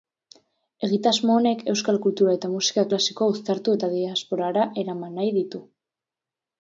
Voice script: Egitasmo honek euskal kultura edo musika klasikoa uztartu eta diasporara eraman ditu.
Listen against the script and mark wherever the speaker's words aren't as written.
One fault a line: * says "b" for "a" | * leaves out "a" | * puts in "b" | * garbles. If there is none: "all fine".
* says "eta" for "edo"
* puts in "nahi"